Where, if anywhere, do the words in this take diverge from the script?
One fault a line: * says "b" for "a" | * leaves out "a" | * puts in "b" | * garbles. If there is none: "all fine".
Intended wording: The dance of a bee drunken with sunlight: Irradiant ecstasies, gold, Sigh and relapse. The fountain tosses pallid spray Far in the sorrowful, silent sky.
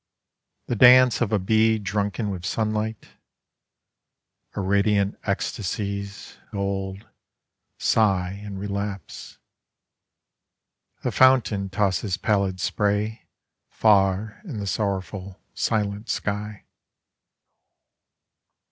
all fine